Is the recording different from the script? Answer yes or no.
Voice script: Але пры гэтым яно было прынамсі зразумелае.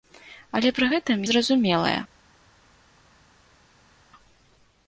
yes